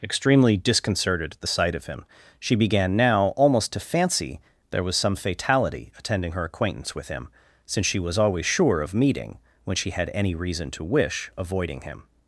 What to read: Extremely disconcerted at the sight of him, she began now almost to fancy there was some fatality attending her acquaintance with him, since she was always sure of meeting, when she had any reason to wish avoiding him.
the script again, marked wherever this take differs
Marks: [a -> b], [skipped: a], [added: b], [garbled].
Extremely disconcerted at the sight of him, she began now almost to fancy there was some fatality attending her acquaintance with him, since she was always sure of meeting, when she had any reason to wish avoiding him.